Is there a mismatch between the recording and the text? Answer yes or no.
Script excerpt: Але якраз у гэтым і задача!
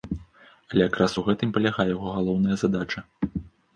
yes